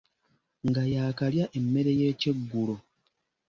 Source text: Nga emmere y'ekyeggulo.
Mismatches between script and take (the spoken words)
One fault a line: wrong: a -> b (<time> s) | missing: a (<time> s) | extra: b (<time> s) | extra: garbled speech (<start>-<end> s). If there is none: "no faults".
extra: yaakalya (0.9 s)